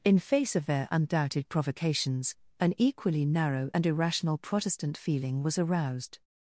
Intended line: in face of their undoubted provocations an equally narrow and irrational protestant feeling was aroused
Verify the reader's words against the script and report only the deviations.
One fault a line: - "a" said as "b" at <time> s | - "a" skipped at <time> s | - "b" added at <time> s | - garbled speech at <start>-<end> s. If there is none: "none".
none